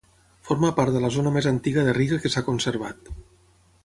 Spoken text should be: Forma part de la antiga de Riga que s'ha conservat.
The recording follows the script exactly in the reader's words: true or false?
false